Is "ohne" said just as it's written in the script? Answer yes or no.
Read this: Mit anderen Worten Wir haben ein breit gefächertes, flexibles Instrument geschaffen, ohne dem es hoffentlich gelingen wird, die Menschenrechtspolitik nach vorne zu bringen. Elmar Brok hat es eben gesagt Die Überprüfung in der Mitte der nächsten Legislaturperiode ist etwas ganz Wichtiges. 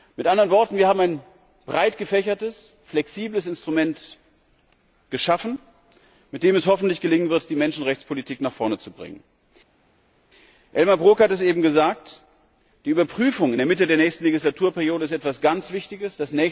no